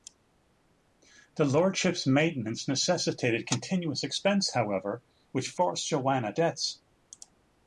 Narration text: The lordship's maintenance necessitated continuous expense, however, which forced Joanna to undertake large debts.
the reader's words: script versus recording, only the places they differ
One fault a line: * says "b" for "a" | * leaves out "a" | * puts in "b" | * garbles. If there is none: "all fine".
* leaves out "to undertake large"